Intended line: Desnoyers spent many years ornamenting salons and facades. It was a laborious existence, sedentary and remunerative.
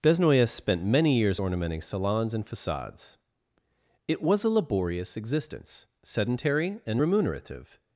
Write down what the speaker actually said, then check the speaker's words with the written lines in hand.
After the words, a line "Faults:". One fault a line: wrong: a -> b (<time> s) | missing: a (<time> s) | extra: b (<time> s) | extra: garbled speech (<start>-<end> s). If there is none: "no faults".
Desnoyers spent many years ornamenting salons and facades. It was a laborious existence, sedentary and remunerative.
Faults:
no faults